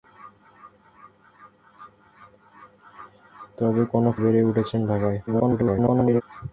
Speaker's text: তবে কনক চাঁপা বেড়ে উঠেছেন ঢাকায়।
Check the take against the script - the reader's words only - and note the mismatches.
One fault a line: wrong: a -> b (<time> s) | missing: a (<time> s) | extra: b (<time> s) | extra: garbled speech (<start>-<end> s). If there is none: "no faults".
missing: চাঁপা (4.2 s)
extra: garbled speech (5.3-6.2 s)